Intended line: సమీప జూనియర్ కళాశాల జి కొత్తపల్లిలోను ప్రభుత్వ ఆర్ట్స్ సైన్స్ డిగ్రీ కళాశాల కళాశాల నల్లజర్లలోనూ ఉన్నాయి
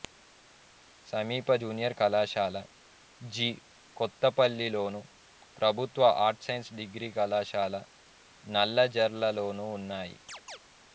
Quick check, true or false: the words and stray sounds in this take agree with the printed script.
false